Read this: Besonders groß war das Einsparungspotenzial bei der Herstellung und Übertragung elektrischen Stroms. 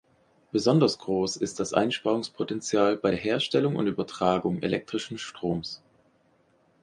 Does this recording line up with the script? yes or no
no